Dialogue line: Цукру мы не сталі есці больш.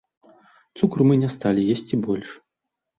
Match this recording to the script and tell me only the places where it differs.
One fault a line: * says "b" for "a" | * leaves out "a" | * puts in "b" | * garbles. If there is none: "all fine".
all fine